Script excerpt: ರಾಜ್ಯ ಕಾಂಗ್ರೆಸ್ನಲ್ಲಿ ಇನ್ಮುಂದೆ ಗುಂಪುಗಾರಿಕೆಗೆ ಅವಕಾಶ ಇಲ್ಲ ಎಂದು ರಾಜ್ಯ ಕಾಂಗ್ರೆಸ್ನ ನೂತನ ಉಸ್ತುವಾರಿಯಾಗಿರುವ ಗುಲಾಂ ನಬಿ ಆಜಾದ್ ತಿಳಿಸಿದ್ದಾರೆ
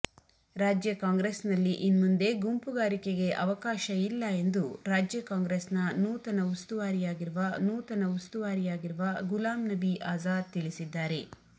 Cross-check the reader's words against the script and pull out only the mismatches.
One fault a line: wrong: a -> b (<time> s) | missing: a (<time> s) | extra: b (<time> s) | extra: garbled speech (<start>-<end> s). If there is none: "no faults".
extra: ನೂತನ ಉಸ್ತುವಾರಿಯಾಗಿರುವ (7.6 s)